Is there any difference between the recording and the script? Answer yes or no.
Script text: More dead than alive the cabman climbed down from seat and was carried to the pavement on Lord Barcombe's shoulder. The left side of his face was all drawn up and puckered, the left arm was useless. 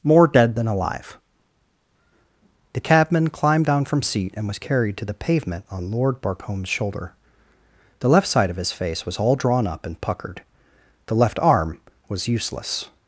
no